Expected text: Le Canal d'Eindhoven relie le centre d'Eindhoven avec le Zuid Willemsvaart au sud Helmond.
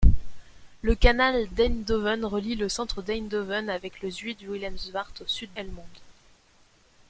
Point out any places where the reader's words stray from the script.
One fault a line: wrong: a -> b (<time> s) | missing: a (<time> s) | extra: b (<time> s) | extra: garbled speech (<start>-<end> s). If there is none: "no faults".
no faults